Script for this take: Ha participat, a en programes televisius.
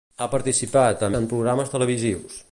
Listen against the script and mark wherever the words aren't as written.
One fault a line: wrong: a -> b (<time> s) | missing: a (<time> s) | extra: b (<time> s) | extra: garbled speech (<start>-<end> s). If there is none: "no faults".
no faults